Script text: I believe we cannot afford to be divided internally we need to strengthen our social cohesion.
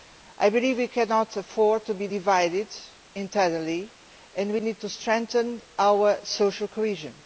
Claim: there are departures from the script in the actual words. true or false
true